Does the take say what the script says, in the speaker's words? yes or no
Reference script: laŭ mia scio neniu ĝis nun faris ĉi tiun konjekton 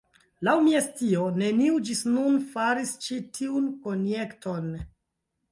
yes